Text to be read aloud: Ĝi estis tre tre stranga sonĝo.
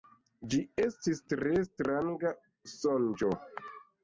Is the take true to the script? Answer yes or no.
no